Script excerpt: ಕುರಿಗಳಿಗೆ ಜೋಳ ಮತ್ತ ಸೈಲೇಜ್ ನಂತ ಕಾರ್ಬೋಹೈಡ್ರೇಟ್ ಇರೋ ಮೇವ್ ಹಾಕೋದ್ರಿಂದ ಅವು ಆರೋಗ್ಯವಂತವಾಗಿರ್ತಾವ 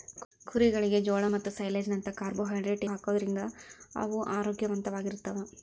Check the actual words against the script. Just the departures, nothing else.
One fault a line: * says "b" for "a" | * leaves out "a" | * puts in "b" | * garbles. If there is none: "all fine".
* leaves out "ಇರೋ ಮೇವ್"